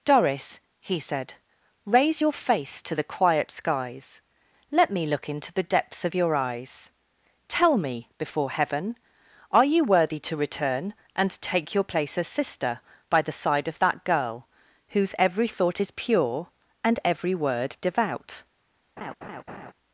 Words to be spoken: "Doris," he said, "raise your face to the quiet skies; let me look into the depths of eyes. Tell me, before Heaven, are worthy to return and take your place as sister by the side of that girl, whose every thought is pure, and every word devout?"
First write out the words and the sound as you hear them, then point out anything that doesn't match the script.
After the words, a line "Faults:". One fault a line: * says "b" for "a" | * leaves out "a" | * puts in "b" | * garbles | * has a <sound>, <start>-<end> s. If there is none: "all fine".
"Doris," he said, "raise your face to the quiet skies; let me look into the depths of your eyes. Tell me, before Heaven, are you worthy to return and take your place as sister by the side of that girl, whose every thought is pure, and every word devout?"
Faults:
* puts in "your"
* puts in "you"
* has a laugh, 19.0-19.7 s